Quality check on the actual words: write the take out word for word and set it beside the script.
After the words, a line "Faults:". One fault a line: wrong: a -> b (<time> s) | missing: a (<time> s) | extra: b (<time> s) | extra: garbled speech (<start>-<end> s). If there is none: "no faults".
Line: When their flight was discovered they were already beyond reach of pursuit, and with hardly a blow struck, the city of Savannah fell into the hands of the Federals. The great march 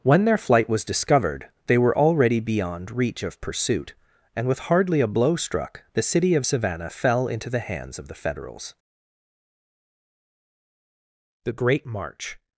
When their flight was discovered they were already beyond reach of pursuit, and with hardly a blow struck, the city of Savannah fell into the hands of the Federals. The great march
Faults:
no faults